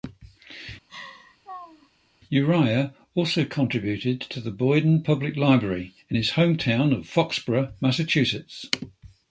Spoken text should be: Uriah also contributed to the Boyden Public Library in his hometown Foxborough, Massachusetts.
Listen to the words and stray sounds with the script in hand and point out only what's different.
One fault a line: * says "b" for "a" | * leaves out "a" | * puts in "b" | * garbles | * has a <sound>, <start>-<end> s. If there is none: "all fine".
* has a laugh, 0.9-1.9 s
* puts in "of"